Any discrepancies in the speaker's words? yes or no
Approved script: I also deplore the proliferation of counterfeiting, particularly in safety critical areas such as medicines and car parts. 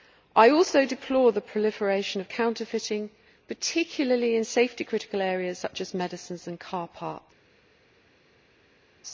no